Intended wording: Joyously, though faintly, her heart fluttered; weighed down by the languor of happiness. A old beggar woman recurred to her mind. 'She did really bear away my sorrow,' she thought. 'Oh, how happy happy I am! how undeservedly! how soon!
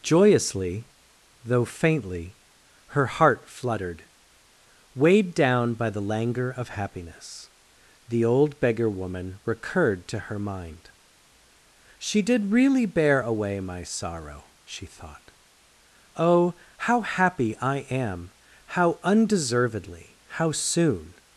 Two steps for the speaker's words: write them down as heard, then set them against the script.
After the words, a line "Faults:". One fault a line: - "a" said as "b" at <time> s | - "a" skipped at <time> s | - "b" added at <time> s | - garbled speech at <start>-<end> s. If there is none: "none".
Joyously, though faintly, her heart fluttered; weighed down by the languor of happiness. The old beggar woman recurred to her mind. 'She did really bear away my sorrow,' she thought. 'Oh, how happy I am! how undeservedly! how soon!
Faults:
- "A" said as "The" at 8.1 s
- "happy" skipped at 17.6 s